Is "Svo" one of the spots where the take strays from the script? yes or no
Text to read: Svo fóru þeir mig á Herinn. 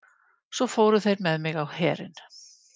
no